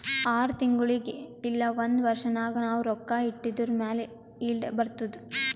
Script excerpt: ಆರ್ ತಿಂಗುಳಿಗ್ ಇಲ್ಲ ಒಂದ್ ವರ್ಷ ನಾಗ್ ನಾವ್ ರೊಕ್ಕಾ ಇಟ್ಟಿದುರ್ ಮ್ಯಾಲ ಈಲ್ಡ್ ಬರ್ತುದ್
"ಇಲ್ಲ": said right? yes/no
yes